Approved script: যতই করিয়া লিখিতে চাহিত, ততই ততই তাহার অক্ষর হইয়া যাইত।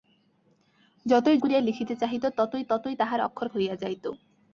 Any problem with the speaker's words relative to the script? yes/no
no